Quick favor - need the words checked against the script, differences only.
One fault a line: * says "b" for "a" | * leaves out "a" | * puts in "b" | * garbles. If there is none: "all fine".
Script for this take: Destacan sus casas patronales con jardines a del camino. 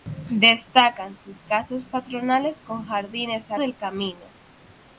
all fine